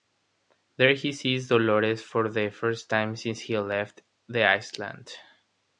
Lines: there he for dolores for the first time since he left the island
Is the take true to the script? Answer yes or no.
no